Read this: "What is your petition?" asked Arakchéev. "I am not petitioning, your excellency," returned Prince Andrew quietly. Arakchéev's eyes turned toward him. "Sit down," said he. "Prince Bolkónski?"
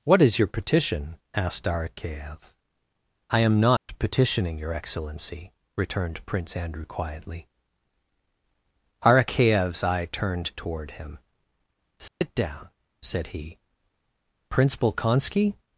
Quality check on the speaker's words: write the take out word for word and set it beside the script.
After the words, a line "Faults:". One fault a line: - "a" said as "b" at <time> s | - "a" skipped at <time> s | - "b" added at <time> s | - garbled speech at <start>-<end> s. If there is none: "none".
"What is your petition?" asked Arakchéev. "I am not petitioning, your excellency," returned Prince Andrew quietly. Arakchéev's eye turned toward him. "Sit down," said he. "Prince Bolkónski?"
Faults:
- "eyes" said as "eye" at 9.8 s